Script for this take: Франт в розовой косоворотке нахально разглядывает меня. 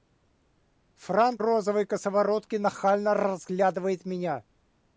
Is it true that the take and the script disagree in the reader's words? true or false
true